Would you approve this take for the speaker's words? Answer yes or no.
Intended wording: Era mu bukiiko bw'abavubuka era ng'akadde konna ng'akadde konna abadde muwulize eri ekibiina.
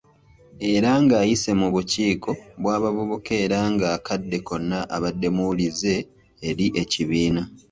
no